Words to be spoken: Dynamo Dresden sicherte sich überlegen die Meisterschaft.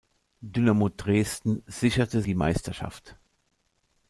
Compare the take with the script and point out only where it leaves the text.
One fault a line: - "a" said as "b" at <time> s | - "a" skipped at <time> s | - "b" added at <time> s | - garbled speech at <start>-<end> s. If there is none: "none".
- "sich überlegen" skipped at 2.2 s